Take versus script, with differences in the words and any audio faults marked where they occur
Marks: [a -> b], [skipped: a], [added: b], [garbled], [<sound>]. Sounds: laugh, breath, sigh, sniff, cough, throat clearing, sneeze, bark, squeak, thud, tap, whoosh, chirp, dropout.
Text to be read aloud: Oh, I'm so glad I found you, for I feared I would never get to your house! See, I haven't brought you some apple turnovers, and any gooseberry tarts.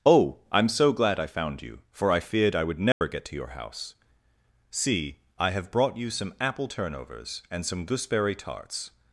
Oh, I'm so glad I found you, for I feared I would never [dropout] get to your house! See, I [haven't -> have] brought you some apple turnovers, and [any -> some] gooseberry tarts.